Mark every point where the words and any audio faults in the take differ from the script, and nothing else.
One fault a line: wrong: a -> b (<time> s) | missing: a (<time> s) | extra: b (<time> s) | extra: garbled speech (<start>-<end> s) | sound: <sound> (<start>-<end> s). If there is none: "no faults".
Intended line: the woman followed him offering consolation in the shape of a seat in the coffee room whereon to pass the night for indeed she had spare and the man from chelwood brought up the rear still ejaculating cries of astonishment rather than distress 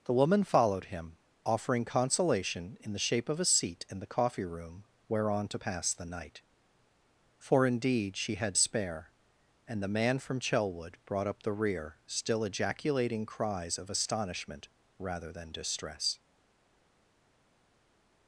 no faults